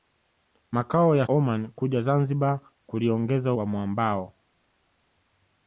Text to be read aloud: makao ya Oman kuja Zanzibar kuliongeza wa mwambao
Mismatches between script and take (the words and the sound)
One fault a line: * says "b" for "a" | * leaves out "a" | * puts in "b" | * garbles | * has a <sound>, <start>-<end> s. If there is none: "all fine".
all fine